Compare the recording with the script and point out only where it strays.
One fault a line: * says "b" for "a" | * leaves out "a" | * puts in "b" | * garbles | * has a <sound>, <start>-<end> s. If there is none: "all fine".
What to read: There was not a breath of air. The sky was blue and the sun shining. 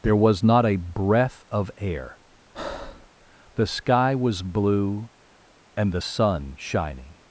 * has a breath, 2.5-3.1 s